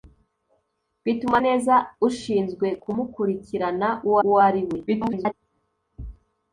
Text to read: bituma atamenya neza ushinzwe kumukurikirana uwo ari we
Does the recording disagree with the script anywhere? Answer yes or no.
yes